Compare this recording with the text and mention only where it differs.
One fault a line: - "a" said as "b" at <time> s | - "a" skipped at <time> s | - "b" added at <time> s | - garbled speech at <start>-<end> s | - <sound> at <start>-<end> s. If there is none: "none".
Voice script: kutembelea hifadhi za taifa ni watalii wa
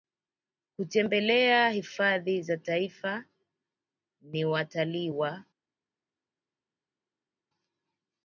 none